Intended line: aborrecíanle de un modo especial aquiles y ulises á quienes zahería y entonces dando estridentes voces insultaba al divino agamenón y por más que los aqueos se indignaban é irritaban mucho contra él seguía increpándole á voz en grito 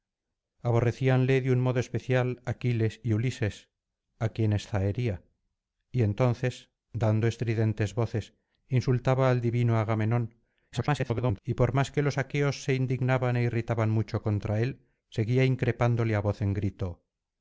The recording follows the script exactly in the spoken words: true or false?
false